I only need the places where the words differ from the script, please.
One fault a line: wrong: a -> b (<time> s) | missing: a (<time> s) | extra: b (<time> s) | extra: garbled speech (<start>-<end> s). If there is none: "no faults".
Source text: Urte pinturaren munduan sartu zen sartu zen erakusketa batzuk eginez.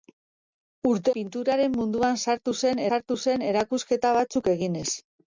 no faults